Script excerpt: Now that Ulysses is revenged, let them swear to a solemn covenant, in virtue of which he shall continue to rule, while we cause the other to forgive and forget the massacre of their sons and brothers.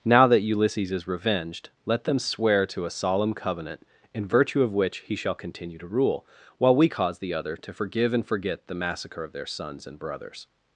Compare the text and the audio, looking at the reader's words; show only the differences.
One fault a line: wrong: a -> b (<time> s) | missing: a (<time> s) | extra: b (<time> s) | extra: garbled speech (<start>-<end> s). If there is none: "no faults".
no faults